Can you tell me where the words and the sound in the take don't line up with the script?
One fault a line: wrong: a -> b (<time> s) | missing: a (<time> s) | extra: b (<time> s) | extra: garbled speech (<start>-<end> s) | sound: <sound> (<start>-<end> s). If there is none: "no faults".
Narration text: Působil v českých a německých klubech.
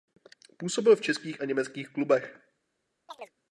sound: chirp (3.1-3.3 s)